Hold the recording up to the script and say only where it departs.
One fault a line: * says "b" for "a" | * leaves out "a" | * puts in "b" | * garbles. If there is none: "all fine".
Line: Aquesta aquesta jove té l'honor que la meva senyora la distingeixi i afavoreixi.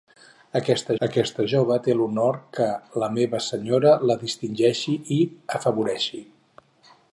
all fine